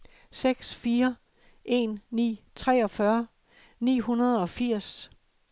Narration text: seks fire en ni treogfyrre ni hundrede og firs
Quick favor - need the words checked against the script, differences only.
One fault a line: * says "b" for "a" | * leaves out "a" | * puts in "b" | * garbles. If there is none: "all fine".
all fine